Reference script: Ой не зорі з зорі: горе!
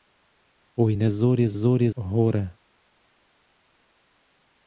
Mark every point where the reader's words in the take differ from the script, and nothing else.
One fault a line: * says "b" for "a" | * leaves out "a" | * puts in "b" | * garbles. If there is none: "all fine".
all fine